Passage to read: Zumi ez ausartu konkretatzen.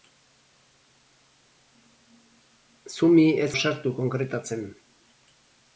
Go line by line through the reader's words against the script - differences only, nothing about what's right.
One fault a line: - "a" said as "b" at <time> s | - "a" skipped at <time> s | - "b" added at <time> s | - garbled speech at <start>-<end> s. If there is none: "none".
none